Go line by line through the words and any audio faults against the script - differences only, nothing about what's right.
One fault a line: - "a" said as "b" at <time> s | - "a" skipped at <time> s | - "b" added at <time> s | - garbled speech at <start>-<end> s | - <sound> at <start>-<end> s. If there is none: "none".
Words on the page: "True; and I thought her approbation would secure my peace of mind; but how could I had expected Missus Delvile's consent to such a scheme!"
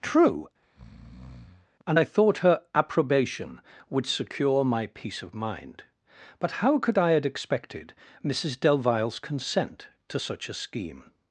- breath at 0.6-1.7 s